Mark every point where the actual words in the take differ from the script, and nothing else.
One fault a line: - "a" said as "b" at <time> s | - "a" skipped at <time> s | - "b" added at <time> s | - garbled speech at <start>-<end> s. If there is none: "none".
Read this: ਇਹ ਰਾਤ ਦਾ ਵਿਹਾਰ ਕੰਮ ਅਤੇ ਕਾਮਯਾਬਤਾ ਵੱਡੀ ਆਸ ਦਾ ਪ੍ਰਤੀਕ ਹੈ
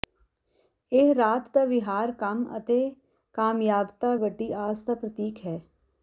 none